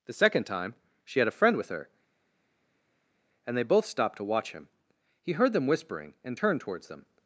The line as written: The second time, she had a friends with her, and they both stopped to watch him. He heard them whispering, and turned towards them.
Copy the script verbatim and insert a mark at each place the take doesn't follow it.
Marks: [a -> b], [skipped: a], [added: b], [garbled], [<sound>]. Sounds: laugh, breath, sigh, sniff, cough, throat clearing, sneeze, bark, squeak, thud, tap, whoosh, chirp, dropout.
The second time, she had a [friends -> friend] with her, and they both stopped to watch him. He heard them whispering, and turned towards them.